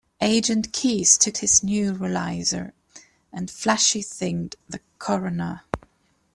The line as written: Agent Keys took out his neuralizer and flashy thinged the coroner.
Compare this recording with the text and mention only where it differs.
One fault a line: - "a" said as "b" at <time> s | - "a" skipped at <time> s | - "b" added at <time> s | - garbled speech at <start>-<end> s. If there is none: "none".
- "out" skipped at 1.4 s